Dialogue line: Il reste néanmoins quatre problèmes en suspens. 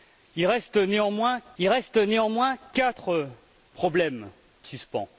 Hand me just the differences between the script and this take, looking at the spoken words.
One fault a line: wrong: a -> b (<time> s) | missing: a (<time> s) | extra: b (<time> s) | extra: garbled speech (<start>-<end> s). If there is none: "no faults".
extra: il reste néanmoins (1.6 s)
missing: en (4.3 s)